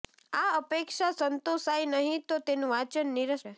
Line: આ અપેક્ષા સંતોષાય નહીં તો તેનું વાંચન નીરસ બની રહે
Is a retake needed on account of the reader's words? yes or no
yes